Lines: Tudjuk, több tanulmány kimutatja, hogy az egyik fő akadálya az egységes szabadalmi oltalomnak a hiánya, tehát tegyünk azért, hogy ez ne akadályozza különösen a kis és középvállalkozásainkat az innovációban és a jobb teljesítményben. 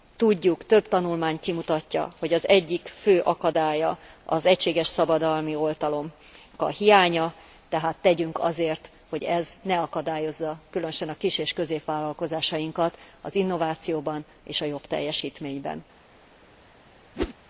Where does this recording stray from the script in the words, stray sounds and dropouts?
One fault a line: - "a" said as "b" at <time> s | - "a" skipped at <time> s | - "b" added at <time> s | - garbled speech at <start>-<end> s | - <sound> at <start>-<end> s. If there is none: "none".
- whoosh at 17.1-17.3 s